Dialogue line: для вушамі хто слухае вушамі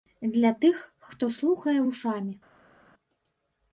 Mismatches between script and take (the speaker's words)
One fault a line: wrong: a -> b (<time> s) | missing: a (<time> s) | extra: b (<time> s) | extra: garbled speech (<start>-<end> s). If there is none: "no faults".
wrong: вушамі -> тых (0.6 s)